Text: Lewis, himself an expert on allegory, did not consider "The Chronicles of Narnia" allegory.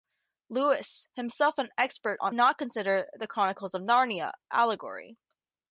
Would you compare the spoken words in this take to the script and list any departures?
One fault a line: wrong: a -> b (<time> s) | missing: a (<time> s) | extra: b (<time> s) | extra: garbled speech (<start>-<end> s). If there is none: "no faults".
missing: allegory did (2.3 s)